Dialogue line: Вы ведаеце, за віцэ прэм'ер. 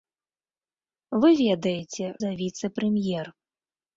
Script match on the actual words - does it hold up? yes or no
yes